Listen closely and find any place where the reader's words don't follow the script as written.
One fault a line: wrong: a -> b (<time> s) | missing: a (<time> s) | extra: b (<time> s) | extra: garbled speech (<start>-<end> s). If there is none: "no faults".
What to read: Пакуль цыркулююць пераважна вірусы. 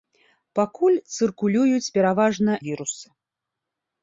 no faults